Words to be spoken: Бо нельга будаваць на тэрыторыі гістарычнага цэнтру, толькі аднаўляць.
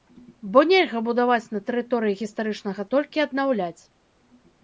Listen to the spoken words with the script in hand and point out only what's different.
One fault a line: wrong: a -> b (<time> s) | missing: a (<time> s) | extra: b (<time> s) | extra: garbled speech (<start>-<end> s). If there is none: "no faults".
missing: цэнтру (2.9 s)